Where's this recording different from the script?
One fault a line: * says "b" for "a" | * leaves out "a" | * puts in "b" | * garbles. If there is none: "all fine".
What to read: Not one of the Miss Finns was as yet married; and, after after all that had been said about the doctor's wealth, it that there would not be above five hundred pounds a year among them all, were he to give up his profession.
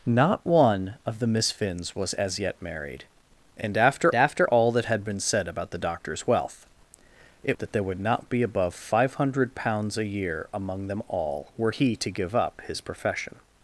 all fine